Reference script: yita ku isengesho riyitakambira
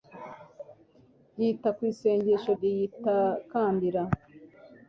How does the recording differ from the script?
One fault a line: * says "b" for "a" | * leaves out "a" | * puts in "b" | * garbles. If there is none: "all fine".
all fine